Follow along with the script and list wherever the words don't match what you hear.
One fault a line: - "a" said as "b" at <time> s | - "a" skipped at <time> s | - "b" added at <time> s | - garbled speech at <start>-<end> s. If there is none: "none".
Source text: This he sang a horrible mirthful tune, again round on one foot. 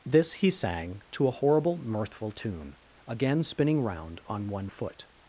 - "to" added at 1.1 s
- "spinning" added at 3.4 s